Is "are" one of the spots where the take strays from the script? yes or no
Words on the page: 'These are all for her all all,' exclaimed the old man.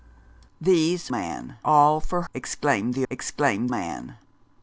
yes